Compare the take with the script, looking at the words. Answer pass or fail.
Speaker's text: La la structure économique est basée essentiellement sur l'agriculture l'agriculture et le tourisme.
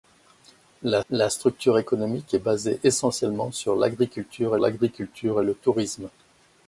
pass